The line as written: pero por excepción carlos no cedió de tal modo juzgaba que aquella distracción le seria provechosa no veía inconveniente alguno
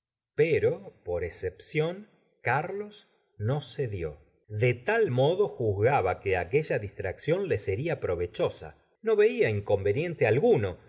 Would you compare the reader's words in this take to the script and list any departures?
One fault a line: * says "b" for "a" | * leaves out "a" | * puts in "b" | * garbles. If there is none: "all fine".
all fine